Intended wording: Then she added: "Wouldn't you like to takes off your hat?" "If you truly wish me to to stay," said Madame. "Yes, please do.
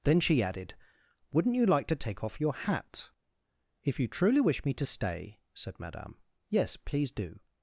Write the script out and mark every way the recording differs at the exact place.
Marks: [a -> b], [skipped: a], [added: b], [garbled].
Then she added: "Wouldn't you like to [takes -> take] off your hat?" "If you truly wish me to [skipped: to] stay," said Madame. "Yes, please do.